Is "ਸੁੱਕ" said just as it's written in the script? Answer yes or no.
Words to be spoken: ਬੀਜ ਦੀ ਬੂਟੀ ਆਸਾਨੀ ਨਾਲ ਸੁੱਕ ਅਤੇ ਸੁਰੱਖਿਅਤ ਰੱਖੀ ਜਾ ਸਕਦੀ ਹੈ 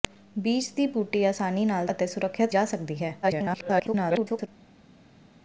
no